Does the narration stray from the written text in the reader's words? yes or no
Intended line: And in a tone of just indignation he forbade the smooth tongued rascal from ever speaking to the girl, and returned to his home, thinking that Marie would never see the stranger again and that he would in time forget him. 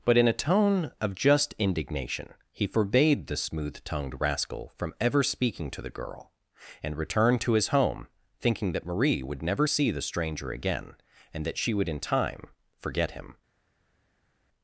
yes